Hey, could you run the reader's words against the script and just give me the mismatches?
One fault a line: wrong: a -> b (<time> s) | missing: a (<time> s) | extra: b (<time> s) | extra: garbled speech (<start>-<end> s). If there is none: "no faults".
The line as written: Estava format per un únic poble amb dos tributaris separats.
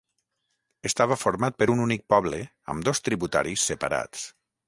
no faults